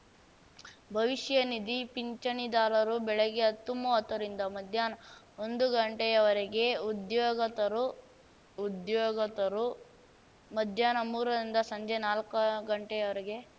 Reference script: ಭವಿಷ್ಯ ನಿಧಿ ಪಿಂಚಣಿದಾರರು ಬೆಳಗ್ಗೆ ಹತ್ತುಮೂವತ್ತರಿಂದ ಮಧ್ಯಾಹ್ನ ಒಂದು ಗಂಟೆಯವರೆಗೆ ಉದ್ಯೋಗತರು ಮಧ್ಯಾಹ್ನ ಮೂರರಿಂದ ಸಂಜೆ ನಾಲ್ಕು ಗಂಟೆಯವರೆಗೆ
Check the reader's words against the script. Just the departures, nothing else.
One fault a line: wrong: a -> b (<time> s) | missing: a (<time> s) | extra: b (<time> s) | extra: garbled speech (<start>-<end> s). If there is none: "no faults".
extra: ಉದ್ಯೋಗತರು (8.6 s)